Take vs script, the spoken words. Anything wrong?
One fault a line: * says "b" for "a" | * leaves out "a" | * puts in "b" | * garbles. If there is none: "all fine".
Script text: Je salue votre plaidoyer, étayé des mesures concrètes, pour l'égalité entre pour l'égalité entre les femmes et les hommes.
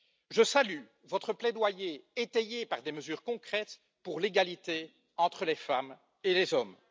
* puts in "par"
* leaves out "pour l'égalité entre"